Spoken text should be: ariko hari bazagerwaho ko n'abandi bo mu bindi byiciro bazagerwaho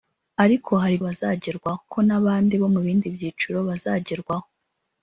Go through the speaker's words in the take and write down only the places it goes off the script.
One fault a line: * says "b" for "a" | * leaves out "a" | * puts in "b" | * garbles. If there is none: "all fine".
all fine